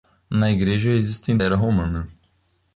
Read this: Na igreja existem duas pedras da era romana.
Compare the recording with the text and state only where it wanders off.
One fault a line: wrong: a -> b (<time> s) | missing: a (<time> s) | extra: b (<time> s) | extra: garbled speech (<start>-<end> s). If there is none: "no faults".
missing: duas pedras da (1.4 s)